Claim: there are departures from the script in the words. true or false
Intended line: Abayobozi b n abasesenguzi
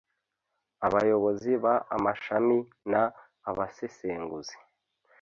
true